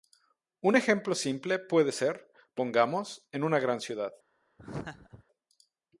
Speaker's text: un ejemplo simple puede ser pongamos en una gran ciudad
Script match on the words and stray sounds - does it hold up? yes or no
no